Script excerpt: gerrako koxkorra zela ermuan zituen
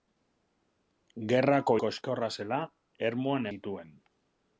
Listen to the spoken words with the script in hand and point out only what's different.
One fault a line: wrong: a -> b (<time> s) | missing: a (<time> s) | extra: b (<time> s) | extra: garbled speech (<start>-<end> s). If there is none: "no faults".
no faults